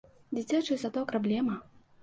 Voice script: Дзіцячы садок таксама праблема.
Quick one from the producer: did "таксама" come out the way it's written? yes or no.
no